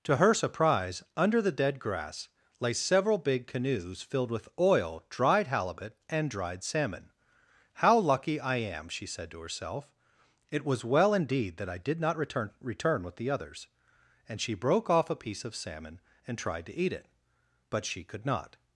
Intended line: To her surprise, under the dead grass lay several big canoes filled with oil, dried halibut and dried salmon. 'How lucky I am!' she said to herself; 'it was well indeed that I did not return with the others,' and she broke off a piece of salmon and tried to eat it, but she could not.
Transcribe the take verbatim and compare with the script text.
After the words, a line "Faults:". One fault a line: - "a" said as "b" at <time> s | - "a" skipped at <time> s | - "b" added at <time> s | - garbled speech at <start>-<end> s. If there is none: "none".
To her surprise, under the dead grass lay several big canoes filled with oil, dried halibut and dried salmon. 'How lucky I am!' she said to herself; 'it was well indeed that I did not return return with the others,' and she broke off a piece of salmon and tried to eat it, but she could not.
Faults:
- "return" added at 12.6 s